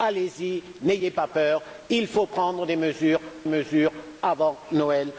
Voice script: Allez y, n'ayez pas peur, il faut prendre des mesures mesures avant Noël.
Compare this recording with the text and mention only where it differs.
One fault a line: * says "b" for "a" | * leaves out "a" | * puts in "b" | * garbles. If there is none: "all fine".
all fine